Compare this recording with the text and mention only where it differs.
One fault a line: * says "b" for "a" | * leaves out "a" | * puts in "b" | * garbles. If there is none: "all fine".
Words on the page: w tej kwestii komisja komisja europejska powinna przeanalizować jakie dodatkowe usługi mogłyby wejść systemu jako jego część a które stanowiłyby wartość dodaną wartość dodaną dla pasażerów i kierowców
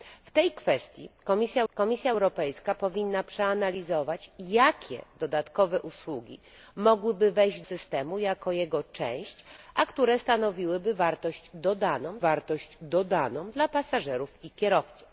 all fine